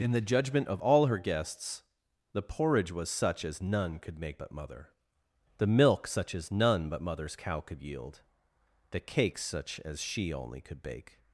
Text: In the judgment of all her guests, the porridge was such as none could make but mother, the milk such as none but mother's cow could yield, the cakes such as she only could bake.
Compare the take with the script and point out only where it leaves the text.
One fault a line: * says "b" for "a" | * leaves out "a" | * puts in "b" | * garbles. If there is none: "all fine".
all fine